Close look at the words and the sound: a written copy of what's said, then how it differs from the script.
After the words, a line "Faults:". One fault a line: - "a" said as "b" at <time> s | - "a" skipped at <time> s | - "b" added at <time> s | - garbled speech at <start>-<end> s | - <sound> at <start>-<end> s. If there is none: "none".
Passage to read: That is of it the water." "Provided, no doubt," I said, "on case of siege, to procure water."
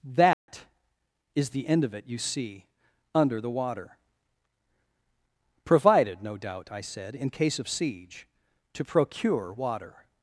That is the end of it you see under the water." "Provided, no doubt," I said, "in case of siege, to procure water."
Faults:
- dropout at 0.3-0.5 s
- "the end" added at 1.5 s
- "you see under" added at 2.1 s
- "on" said as "in" at 7.2 s